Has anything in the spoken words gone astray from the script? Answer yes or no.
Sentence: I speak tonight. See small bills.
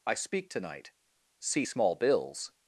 no